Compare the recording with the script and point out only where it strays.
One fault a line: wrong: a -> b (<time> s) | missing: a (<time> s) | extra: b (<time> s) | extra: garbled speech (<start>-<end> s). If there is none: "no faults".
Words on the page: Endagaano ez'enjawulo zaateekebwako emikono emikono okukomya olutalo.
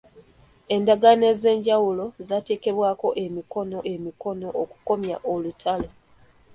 no faults